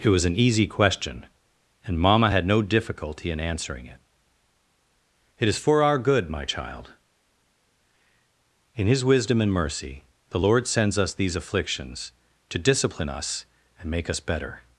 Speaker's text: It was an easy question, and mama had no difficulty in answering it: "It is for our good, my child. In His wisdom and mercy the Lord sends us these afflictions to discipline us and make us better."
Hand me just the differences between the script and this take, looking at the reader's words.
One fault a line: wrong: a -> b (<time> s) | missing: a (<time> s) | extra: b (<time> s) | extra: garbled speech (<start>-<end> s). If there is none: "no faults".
no faults